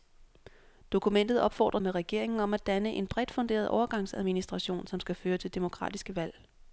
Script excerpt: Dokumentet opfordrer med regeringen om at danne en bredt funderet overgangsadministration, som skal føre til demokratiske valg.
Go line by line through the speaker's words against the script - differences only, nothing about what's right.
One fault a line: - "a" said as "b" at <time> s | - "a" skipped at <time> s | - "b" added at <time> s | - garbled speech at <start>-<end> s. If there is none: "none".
none